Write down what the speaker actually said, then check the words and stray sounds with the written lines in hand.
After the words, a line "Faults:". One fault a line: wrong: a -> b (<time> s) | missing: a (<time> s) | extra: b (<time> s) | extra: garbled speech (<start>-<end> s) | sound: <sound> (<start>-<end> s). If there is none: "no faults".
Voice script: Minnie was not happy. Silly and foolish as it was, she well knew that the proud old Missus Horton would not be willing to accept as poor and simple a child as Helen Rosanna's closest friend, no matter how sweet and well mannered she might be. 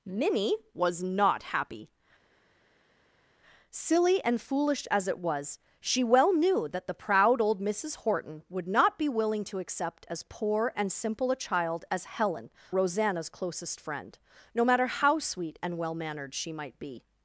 Minnie was not happy. Silly and foolish as it was, she well knew that the proud old Missus Horton would not be willing to accept as poor and simple a child as Helen Rosanna's closest friend, no matter how sweet and well mannered she might be.
Faults:
no faults